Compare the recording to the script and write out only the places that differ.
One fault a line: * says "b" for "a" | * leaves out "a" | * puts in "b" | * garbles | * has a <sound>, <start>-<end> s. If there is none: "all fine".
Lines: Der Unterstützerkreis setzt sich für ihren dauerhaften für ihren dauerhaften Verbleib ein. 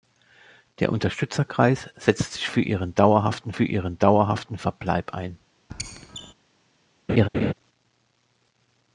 * has a squeak, 5.7-6.3 s
* has a laugh, 7.1-7.5 s